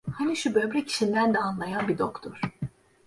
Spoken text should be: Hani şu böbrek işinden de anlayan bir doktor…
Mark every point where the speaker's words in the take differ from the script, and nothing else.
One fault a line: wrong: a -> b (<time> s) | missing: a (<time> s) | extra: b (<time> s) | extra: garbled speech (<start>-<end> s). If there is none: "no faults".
no faults